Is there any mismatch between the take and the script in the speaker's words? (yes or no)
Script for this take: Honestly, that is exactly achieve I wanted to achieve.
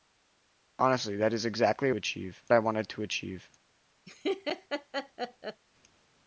no